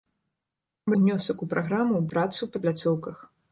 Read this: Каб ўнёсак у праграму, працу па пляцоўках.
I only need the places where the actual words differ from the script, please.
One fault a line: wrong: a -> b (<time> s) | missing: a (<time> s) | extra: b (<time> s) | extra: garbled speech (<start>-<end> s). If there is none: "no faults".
no faults